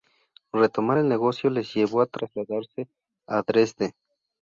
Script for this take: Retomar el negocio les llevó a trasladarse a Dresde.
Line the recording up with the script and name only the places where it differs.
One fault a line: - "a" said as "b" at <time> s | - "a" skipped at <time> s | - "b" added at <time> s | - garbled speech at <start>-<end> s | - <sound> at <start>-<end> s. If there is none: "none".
none